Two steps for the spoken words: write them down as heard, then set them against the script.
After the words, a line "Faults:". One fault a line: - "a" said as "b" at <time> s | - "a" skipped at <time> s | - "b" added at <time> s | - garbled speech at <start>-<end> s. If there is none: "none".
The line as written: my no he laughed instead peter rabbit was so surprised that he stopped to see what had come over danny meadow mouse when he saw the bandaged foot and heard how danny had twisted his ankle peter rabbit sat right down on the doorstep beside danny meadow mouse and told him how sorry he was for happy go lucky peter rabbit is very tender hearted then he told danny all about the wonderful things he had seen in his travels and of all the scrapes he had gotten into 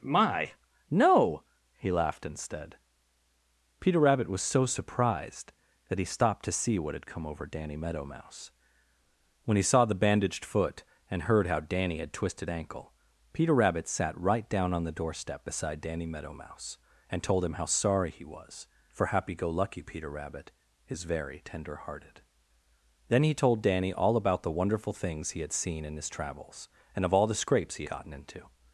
my no he laughed instead peter rabbit was so surprised that he stopped to see what had come over danny meadow mouse when he saw the bandaged foot and heard how danny had twisted ankle peter rabbit sat right down on the doorstep beside danny meadow mouse and told him how sorry he was for happy go lucky peter rabbit is very tender hearted then he told danny all about the wonderful things he had seen in his travels and of all the scrapes he gotten into
Faults:
- "his" skipped at 12.5 s
- "had" skipped at 27.8 s